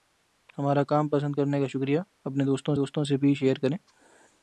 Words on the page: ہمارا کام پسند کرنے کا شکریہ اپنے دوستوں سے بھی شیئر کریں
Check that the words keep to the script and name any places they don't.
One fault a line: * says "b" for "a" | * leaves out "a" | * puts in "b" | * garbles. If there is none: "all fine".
* puts in "دوستوں"